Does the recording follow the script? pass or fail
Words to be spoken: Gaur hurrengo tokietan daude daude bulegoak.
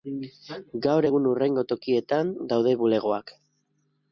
fail